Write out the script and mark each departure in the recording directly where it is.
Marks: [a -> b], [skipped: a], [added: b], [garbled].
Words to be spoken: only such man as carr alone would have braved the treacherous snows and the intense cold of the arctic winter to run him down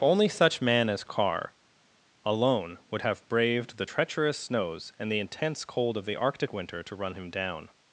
only such man as carr alone would have braved the treacherous snows and the intense cold of the arctic winter to run him down